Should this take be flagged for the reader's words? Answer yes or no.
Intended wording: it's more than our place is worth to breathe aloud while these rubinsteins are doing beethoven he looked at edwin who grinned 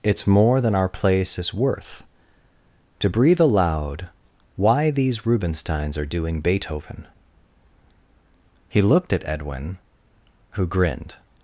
yes